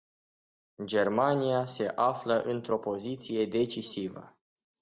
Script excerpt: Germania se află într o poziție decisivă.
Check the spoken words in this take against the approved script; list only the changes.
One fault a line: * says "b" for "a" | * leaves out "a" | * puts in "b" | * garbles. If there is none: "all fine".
all fine